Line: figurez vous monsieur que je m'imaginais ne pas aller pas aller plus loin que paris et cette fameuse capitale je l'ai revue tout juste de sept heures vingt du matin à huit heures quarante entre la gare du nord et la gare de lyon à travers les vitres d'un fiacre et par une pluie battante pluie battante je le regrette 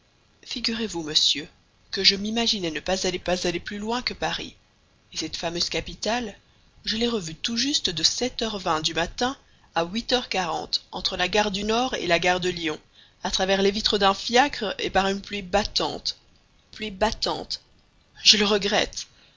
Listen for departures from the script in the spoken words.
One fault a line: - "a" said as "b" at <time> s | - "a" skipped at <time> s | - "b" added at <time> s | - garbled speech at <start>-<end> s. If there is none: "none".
none